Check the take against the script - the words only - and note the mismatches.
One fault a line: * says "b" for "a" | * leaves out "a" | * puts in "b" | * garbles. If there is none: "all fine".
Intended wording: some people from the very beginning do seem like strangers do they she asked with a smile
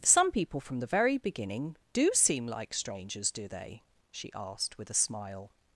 all fine